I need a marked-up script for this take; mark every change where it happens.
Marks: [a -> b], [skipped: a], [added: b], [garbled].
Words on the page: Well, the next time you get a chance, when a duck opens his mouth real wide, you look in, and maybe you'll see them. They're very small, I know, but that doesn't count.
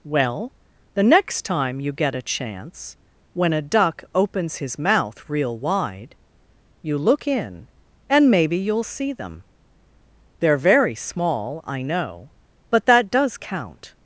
Well, the next time you get a chance, when a duck opens his mouth real wide, you look in, and maybe you'll see them. They're very small, I know, but that [doesn't -> does] count.